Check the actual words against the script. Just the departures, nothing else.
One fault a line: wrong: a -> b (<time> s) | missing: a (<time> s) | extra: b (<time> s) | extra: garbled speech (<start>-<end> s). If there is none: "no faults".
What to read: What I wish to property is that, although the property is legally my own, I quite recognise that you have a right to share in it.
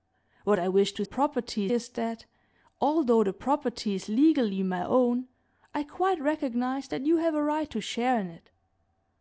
no faults